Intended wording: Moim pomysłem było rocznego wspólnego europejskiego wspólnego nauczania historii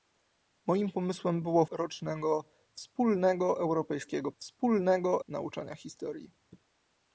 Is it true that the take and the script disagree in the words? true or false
false